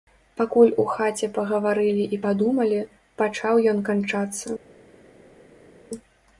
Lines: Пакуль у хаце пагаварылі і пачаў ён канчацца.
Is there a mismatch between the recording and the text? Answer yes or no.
yes